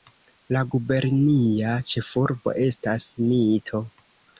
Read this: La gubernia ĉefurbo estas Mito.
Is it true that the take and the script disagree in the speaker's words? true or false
false